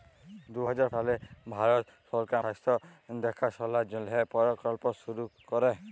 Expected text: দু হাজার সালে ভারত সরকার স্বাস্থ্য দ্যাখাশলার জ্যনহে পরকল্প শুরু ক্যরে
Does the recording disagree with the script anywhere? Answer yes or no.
no